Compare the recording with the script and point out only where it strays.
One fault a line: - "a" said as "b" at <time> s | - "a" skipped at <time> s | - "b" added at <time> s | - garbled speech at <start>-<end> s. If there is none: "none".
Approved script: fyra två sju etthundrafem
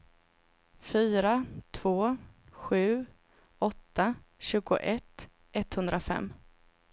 - "åtta tjugoett" added at 3.6 s